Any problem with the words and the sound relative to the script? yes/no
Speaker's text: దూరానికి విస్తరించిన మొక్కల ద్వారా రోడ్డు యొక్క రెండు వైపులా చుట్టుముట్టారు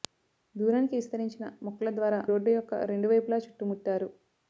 no